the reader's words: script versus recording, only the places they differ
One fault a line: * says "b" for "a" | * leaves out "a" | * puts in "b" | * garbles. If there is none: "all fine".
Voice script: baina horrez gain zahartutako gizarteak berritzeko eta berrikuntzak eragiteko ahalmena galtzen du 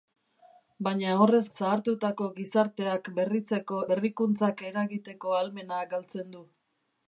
* leaves out "gain"
* leaves out "eta"